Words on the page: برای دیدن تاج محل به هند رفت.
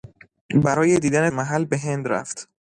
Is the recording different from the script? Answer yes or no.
yes